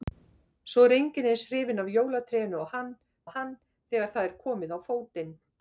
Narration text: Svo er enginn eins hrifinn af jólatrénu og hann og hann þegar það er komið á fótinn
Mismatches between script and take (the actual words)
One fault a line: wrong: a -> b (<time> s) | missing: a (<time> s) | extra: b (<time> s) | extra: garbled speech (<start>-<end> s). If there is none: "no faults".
no faults